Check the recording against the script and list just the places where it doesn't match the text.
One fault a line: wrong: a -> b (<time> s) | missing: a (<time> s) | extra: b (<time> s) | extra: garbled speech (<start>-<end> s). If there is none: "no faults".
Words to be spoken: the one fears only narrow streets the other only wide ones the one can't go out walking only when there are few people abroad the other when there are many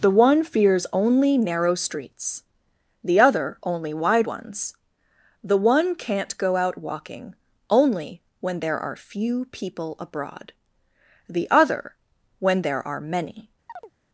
no faults